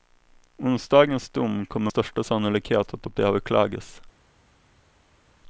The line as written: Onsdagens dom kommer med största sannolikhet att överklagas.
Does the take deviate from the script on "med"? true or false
true